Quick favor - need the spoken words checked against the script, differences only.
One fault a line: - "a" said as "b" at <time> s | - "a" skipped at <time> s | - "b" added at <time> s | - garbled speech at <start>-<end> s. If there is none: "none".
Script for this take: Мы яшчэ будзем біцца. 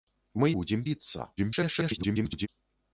- "яшчэ" skipped at 0.5 s
- garbled speech at 1.4-2.5 s